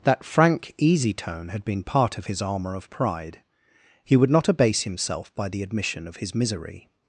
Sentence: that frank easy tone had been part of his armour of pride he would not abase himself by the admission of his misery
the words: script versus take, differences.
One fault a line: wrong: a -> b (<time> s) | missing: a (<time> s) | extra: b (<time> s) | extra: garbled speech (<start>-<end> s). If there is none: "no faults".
no faults